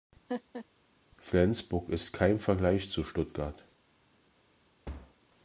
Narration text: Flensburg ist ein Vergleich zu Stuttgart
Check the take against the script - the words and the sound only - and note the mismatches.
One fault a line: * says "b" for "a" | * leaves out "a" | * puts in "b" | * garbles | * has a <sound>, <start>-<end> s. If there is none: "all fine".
* has a laugh, 0.3-0.7 s
* says "kein" for "ein"
* has a thud, 4.9-5.2 s